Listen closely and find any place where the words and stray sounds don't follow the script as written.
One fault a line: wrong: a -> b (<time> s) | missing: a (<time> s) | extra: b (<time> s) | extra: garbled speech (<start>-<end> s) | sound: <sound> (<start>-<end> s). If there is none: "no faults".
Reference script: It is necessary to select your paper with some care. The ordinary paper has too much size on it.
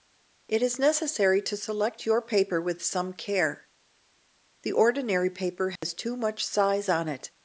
sound: dropout (5.8-5.8 s)